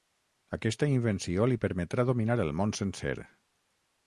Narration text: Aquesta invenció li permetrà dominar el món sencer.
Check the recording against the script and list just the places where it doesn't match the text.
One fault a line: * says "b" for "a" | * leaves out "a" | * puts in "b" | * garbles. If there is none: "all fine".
all fine